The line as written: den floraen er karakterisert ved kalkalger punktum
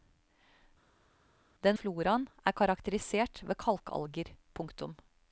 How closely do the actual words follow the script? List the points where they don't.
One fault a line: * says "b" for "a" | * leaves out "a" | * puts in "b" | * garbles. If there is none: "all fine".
all fine